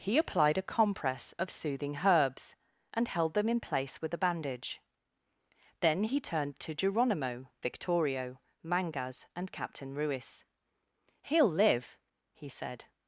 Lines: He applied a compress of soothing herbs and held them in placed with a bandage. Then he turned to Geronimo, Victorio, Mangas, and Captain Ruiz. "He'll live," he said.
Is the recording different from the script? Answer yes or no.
yes